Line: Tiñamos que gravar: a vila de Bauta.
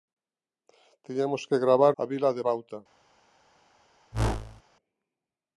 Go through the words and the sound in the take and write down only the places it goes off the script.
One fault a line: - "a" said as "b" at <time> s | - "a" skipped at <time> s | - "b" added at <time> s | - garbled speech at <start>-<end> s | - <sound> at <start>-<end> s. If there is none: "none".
- whoosh at 4.1-4.6 s